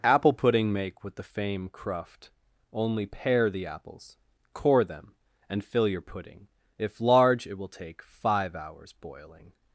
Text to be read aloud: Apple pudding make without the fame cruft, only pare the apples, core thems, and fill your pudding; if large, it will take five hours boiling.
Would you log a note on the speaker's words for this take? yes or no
yes